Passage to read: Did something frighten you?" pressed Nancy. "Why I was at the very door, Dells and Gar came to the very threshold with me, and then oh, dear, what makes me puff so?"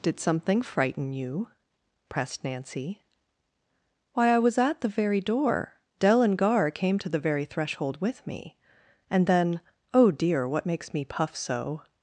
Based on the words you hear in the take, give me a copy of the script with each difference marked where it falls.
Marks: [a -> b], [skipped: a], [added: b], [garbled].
Did something frighten you?" pressed Nancy. "Why I was at the very door, [Dells -> Dell] and Gar came to the very threshold with me, and then oh, dear, what makes me puff so?"